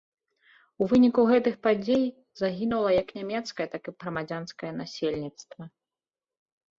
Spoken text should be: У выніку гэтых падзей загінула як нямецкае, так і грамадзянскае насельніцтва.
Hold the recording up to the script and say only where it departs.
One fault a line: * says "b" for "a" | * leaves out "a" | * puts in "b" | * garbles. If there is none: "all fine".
all fine